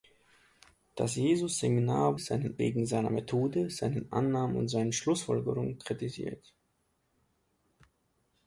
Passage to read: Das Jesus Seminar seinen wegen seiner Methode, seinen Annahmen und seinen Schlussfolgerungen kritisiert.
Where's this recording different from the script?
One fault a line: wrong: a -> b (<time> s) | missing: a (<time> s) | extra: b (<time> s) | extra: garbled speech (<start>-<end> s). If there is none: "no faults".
no faults